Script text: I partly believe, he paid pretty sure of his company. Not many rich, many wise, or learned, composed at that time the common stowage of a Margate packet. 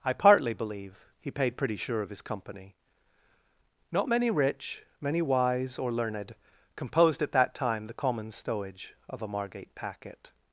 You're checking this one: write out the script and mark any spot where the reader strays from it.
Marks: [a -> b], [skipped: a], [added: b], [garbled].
I partly believe, he paid pretty sure of his company. Not many rich, many wise, or learned, composed at that time the common stowage of a Margate packet.